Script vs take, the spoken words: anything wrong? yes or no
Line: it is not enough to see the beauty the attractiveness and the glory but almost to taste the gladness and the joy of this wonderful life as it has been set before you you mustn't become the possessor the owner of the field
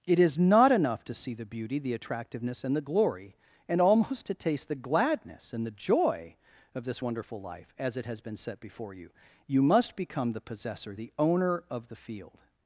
yes